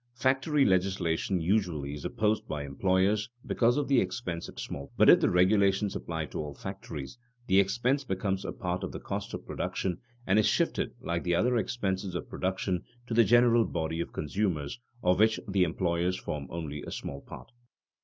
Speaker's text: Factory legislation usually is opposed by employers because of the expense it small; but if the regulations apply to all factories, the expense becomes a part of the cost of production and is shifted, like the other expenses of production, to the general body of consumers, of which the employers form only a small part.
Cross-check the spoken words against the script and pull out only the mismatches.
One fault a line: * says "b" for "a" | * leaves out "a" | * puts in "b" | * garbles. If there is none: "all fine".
all fine